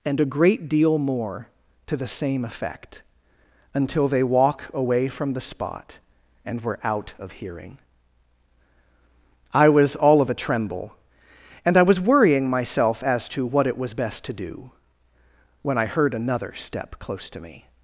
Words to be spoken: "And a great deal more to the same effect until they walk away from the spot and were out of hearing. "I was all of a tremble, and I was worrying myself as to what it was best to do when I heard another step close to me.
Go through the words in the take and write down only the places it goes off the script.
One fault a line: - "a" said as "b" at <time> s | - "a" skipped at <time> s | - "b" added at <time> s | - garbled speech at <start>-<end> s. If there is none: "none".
none